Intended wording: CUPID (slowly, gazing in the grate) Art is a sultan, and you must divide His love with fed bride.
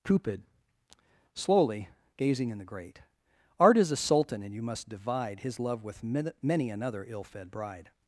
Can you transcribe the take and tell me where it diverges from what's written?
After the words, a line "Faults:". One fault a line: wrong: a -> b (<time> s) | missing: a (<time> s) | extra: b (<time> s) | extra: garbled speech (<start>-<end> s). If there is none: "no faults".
CUPID (slowly, gazing in the grate) Art is a sultan, and you must divide His love with many another ill fed bride.
Faults:
extra: many another ill (6.0 s)